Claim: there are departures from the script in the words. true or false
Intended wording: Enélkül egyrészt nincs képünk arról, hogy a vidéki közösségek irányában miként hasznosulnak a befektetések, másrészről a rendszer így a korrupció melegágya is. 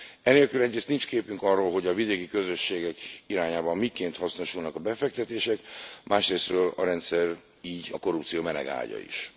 false